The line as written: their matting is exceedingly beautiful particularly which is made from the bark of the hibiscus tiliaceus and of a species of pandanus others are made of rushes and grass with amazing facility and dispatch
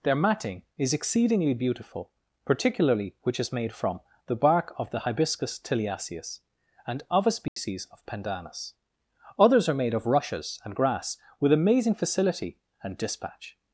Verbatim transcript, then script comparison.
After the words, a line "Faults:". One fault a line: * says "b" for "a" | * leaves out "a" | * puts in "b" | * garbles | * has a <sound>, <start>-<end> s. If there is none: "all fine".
their matting is exceedingly beautiful particularly which is made from the bark of the hibiscus tiliaceus and of a species of pandanus others are made of rushes and grass with amazing facility and dispatch
Faults:
* has a dropout, 7.5-7.6 s